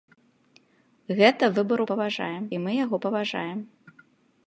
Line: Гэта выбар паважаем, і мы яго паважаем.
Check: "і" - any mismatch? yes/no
no